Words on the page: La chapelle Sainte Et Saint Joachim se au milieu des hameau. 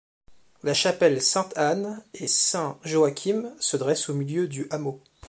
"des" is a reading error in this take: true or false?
true